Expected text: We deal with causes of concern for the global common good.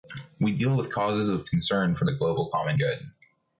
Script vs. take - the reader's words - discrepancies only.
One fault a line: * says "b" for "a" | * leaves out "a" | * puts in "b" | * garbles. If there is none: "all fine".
all fine